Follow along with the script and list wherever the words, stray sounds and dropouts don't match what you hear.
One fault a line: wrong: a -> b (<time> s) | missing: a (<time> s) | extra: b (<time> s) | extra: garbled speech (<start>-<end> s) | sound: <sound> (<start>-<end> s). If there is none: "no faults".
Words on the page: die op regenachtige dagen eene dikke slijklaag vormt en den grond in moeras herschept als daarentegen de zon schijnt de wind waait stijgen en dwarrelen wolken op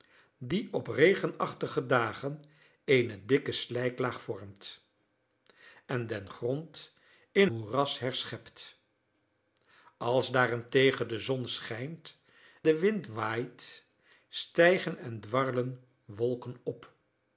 no faults